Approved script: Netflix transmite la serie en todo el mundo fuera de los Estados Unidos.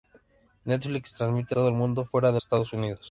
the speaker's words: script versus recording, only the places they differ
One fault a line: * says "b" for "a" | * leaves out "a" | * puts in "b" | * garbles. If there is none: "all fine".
* leaves out "la serie en"
* leaves out "los"